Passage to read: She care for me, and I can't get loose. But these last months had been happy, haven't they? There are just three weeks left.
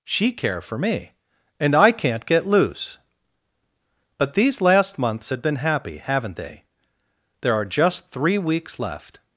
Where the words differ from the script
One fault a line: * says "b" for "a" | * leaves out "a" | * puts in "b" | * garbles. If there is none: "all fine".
all fine